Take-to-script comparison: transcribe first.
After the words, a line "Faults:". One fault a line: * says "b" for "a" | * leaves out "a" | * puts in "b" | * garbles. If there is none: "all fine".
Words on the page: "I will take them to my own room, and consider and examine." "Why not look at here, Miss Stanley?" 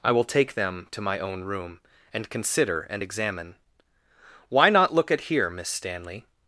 "I will take them to my own room, and consider and examine." "Why not look at here, Miss Stanley?"
Faults:
all fine